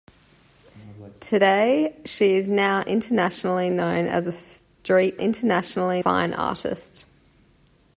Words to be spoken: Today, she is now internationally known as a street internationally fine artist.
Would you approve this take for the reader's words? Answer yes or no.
yes